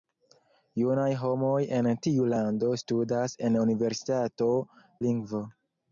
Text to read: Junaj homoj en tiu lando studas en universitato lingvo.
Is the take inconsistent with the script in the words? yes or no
no